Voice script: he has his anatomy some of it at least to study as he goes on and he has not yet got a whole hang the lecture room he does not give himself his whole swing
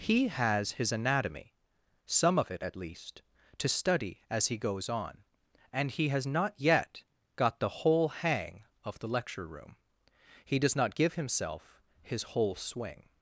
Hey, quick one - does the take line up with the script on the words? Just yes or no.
no